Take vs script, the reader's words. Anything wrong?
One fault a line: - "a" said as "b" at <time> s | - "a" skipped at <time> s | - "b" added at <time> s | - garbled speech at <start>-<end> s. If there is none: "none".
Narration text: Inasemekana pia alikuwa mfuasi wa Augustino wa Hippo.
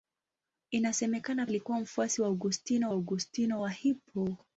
- "pia" skipped at 1.5 s
- "Augustino" added at 2.9 s